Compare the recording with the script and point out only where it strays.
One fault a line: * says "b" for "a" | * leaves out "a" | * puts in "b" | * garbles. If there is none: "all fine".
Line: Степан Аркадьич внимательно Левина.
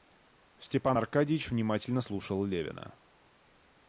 * puts in "слушал"